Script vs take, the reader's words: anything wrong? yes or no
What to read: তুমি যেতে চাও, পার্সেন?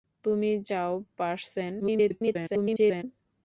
yes